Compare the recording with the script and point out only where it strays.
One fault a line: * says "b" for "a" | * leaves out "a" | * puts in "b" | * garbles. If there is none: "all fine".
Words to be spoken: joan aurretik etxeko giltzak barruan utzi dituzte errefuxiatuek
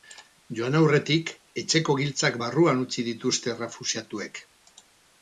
all fine